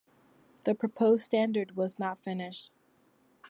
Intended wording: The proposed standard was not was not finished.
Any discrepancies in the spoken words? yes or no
yes